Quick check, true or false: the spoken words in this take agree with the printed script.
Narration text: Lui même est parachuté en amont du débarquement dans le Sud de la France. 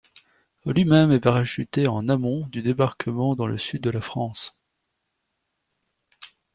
true